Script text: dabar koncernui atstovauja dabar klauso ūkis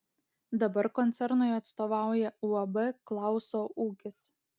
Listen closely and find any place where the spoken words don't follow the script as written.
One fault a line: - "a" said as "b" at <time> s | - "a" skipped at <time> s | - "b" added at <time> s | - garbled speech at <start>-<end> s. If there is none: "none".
- "dabar" said as "uab" at 2.5 s